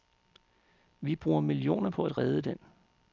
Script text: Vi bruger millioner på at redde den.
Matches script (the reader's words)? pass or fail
pass